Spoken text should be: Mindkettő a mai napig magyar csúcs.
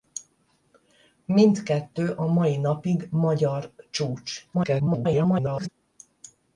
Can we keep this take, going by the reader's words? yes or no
no